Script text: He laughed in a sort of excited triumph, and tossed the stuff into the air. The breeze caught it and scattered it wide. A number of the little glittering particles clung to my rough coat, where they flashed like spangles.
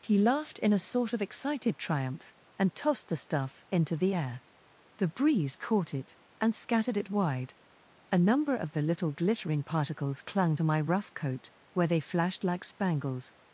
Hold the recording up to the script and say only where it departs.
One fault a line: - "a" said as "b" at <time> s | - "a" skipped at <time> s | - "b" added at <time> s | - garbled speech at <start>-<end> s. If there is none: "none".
none